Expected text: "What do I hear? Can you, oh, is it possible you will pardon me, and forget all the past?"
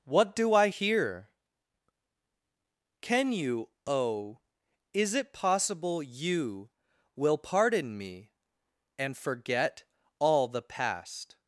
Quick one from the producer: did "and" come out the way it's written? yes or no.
yes